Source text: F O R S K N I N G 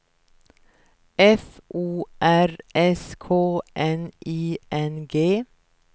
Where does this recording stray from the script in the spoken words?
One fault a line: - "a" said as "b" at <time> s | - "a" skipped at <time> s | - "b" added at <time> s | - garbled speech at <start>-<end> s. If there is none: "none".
none